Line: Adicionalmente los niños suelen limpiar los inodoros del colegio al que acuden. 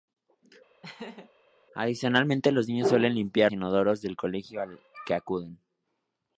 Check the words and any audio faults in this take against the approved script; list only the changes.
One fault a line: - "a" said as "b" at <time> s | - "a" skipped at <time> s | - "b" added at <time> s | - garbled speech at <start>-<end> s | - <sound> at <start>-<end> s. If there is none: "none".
- laugh at 0.8-1.3 s
- "los" skipped at 3.5 s